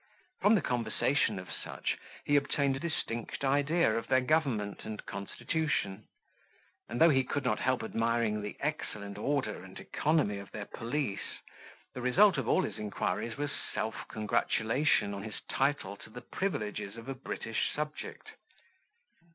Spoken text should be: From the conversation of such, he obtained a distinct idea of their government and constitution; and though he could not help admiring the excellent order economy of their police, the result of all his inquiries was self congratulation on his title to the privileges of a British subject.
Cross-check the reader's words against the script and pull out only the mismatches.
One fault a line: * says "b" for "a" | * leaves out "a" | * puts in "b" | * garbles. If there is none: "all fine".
* puts in "and"